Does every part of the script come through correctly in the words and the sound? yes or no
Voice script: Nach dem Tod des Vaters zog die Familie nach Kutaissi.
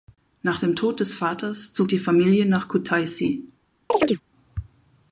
no